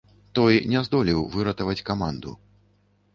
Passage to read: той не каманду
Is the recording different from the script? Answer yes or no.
yes